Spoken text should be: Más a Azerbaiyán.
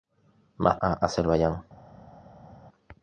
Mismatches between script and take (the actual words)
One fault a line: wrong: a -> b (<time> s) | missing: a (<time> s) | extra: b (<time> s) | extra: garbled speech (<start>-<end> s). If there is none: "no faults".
no faults